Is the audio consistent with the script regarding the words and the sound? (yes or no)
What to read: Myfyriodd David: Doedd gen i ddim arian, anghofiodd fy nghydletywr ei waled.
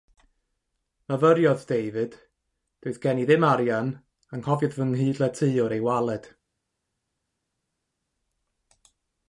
yes